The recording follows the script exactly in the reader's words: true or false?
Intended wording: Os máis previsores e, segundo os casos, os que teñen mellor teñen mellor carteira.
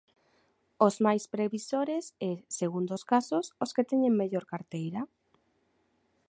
false